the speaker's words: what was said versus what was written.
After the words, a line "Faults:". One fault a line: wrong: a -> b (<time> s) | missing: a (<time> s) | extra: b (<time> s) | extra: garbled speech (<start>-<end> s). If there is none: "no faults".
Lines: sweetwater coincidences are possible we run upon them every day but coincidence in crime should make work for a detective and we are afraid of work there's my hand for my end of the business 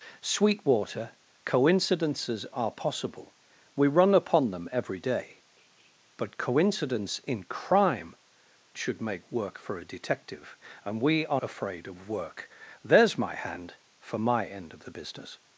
sweetwater coincidences are possible we run upon them every day but coincidence in crime should make work for a detective and we are afraid of work there's my hand for my end of the business
Faults:
no faults